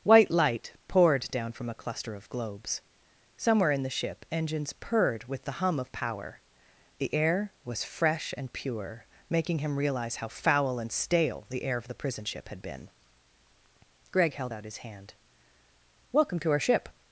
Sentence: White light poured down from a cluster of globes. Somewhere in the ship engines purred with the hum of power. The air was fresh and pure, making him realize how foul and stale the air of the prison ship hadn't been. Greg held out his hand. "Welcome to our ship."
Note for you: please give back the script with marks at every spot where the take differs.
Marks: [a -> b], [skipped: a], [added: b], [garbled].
White light poured down from a cluster of globes. Somewhere in the ship engines purred with the hum of power. The air was fresh and pure, making him realize how foul and stale the air of the prison ship [hadn't -> had] been. Greg held out his hand. "Welcome to our ship."